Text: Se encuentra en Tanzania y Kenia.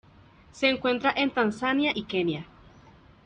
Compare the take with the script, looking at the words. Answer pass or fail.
pass